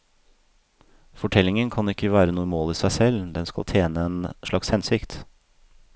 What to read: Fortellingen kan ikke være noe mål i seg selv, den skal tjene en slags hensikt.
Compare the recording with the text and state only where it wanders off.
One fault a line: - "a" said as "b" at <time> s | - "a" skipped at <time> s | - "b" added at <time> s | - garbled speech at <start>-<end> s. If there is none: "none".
none